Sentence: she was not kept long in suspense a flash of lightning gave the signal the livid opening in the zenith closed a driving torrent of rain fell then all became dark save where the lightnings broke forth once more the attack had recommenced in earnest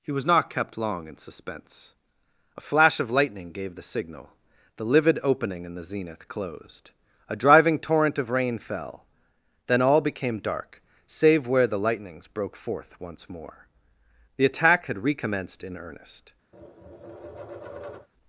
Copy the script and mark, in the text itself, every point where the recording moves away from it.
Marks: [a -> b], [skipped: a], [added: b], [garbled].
[she -> he] was not kept long in suspense a flash of lightning gave the signal the livid opening in the zenith closed a driving torrent of rain fell then all became dark save where the lightnings broke forth once more the attack had recommenced in earnest